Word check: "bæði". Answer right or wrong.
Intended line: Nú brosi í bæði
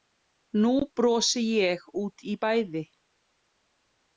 right